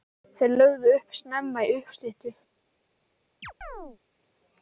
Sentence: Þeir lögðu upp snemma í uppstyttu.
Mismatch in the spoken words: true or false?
false